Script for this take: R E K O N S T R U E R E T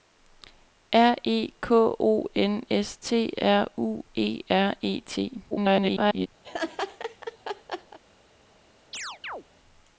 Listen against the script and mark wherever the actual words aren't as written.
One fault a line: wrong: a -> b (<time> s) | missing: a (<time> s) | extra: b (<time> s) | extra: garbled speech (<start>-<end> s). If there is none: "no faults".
extra: garbled speech (5.5-6.3 s)